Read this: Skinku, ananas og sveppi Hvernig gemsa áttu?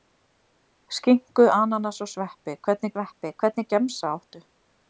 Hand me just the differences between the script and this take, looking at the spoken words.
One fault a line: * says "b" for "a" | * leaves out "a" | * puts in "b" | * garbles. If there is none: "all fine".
* puts in "sveppi Hvernig"